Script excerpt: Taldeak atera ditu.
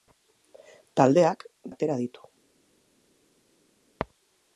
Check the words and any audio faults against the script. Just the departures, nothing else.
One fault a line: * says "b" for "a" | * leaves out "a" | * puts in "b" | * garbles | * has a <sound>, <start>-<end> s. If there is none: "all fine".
all fine